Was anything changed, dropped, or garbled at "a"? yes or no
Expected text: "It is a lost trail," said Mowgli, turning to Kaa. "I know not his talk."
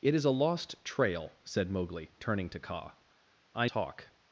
no